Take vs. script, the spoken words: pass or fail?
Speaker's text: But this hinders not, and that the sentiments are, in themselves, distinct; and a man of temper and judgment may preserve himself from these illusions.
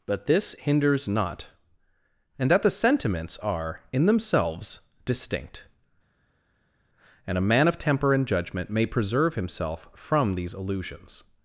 pass